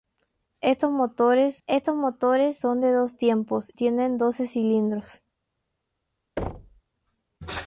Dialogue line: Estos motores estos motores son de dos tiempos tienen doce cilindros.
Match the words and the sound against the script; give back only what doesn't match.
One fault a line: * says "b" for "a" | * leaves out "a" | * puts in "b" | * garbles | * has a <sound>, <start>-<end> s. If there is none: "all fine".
* has a thud, 6.4-6.8 s